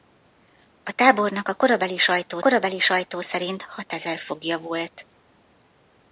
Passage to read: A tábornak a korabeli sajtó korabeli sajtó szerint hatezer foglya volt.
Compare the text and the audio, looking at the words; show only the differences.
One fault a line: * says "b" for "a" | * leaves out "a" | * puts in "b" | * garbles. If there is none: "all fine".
all fine